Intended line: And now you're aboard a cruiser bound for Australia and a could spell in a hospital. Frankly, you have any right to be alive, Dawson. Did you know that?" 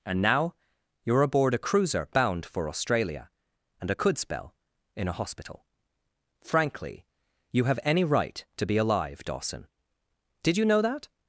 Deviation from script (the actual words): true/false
false